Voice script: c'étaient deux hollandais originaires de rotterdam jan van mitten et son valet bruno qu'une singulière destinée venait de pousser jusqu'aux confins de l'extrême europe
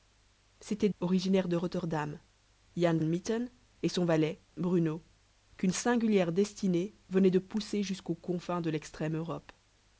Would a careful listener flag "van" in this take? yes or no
yes